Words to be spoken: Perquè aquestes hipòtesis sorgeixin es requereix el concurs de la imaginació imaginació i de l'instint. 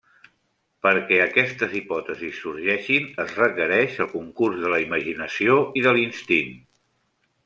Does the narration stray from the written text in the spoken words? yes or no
yes